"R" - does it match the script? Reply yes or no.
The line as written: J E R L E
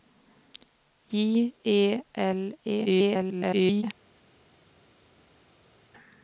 no